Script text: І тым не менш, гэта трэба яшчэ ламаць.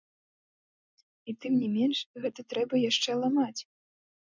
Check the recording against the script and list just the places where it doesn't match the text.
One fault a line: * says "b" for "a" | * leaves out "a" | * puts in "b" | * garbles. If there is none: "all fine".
all fine